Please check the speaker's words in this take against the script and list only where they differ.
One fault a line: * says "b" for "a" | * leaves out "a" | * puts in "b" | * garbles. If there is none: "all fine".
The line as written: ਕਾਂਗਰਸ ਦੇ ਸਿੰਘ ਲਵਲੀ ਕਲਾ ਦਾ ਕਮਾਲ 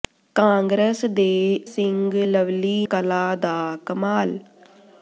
all fine